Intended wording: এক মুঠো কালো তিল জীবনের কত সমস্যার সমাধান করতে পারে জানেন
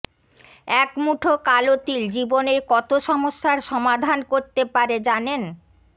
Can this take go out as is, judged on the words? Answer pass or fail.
pass